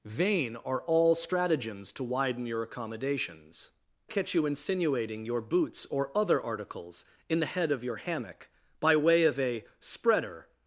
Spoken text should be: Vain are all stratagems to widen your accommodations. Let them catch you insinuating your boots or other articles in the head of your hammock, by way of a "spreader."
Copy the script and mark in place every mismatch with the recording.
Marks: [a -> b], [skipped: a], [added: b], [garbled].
Vain are all stratagems to widen your accommodations. [skipped: Let them] catch you insinuating your boots or other articles in the head of your hammock, by way of a "spreader."